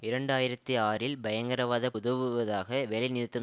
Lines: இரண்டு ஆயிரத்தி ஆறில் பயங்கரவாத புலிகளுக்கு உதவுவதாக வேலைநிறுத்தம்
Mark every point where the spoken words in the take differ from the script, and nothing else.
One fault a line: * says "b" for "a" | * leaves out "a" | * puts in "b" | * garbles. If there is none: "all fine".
* leaves out "புலிகளுக்கு"